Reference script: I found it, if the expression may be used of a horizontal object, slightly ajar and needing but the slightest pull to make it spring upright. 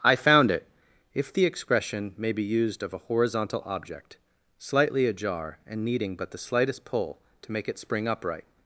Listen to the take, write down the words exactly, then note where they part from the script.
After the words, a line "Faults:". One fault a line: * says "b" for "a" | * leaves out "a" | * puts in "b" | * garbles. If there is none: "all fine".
I found it, if the expression may be used of a horizontal object, slightly ajar and needing but the slightest pull to make it spring upright.
Faults:
all fine